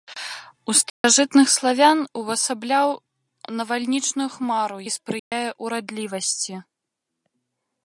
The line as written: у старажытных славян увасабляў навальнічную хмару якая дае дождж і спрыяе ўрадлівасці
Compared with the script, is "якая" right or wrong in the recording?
wrong